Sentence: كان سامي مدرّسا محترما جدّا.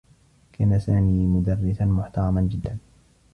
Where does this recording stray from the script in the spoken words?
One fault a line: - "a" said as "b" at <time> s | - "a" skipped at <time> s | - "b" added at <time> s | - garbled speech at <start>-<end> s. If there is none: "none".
none